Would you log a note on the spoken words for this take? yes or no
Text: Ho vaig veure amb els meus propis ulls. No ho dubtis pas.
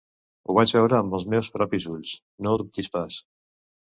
no